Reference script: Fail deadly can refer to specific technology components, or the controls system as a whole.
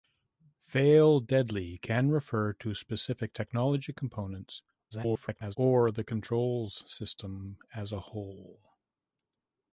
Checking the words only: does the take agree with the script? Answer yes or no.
no